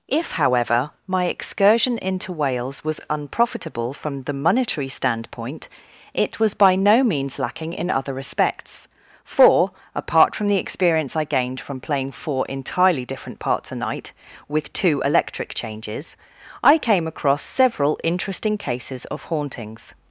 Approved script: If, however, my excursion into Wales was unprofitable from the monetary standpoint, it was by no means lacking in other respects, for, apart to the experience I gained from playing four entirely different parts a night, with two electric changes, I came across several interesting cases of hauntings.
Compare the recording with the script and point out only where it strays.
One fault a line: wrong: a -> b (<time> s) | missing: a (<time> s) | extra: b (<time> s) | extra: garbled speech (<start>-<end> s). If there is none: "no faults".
wrong: to -> from (10.3 s)